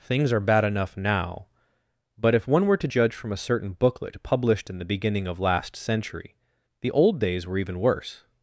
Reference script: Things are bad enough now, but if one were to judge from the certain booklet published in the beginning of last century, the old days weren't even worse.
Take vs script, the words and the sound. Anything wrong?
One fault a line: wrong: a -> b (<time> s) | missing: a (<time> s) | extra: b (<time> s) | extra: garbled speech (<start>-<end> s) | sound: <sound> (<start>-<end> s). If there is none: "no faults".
wrong: the -> a (3.3 s)
wrong: weren't -> were (7.4 s)